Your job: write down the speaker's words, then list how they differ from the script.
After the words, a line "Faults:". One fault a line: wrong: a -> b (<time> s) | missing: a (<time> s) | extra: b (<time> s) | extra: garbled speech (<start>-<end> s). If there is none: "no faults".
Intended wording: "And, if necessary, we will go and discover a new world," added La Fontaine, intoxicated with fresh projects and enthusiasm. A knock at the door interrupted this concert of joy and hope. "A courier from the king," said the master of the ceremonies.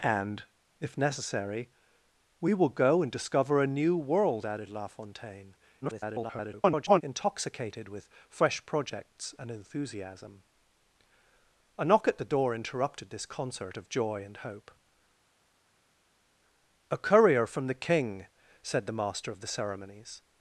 "And, if necessary, we will go and discover a new world," added La Fontaine, [garbled] intoxicated with fresh projects and enthusiasm. A knock at the door interrupted this concert of joy and hope. "A courier from the king," said the master of the ceremonies.
Faults:
extra: garbled speech (5.8-7.0 s)